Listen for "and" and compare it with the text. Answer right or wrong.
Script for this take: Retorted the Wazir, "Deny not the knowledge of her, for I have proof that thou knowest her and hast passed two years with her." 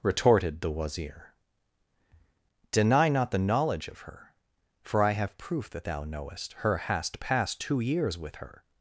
wrong